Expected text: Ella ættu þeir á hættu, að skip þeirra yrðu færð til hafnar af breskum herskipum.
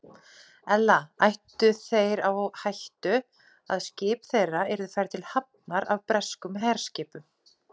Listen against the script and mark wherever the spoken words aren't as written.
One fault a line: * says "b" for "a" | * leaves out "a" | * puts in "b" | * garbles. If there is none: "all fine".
all fine